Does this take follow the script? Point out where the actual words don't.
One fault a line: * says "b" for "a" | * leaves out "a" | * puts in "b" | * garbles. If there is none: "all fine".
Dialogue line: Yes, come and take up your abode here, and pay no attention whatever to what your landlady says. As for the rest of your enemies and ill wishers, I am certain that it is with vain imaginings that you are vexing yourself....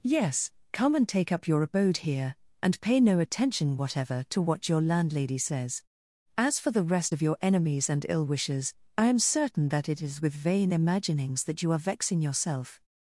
all fine